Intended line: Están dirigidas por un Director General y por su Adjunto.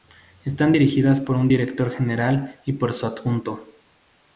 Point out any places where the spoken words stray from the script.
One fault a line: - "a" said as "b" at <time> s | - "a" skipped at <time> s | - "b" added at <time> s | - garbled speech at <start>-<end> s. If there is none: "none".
none